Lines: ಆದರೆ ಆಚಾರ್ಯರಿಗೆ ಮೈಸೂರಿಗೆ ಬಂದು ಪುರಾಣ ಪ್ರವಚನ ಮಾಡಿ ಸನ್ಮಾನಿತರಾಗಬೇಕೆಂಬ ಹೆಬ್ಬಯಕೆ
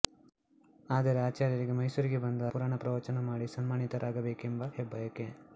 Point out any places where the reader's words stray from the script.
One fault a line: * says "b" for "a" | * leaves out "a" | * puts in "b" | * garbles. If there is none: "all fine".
all fine